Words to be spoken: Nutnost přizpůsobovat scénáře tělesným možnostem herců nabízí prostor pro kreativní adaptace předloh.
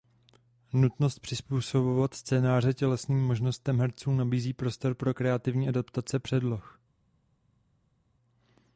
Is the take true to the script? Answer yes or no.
yes